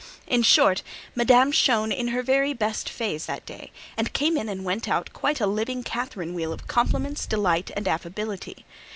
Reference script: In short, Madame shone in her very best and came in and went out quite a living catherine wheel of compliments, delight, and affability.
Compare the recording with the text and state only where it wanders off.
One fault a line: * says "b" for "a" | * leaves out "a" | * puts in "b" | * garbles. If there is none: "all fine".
* puts in "phase that day"